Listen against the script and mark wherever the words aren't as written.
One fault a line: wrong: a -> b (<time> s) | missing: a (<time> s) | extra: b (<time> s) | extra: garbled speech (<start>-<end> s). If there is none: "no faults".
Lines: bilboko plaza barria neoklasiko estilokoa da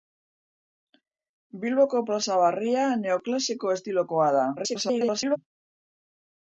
extra: garbled speech (4.6-5.4 s)